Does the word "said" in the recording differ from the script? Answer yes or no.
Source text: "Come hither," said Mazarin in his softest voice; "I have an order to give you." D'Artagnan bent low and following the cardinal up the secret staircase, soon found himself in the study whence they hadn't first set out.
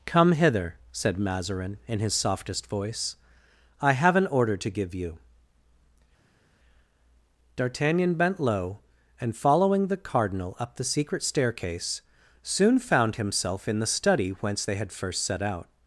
no